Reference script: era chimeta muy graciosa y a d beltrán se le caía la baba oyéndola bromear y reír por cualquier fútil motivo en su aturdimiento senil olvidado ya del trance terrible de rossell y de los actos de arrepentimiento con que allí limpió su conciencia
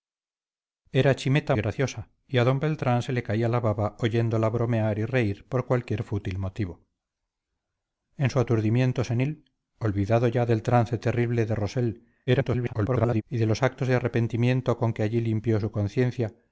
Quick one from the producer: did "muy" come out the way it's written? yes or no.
no